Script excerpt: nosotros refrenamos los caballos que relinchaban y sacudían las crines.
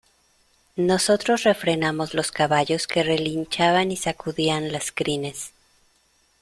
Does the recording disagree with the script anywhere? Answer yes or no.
no